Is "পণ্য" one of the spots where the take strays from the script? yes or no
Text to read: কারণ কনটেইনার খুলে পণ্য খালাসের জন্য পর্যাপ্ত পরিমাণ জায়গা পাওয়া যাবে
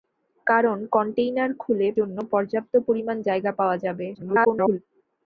yes